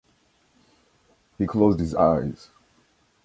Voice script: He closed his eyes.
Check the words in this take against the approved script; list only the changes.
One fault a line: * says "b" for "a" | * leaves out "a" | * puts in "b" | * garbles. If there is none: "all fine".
all fine